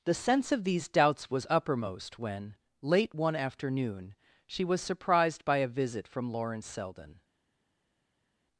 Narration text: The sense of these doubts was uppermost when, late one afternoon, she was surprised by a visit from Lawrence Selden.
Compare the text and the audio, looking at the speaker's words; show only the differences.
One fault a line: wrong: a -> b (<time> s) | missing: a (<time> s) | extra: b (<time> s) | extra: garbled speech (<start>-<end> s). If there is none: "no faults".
no faults